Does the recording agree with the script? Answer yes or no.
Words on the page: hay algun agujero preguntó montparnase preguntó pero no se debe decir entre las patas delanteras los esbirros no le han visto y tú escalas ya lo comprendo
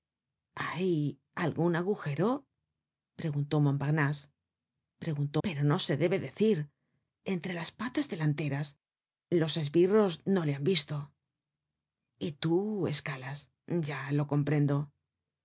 yes